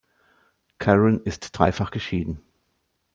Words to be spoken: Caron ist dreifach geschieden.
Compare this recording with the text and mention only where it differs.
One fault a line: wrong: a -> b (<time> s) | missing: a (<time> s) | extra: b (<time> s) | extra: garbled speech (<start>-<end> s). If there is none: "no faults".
no faults